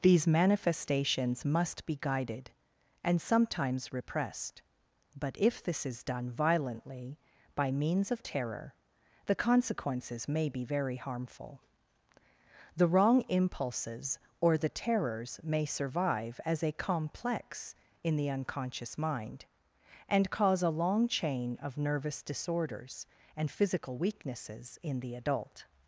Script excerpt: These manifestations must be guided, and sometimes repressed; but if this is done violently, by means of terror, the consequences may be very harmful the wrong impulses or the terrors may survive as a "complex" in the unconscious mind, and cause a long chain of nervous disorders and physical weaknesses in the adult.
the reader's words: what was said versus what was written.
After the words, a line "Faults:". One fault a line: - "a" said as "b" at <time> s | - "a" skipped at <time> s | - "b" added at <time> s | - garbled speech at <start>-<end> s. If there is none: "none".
These manifestations must be guided, and sometimes repressed; but if this is done violently, by means of terror, the consequences may be very harmful the wrong impulses or the terrors may survive as a "complex" in the unconscious mind, and cause a long chain of nervous disorders and physical weaknesses in the adult.
Faults:
none